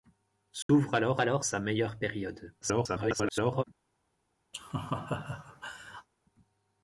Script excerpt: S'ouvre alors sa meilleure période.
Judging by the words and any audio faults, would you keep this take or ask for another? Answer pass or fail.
fail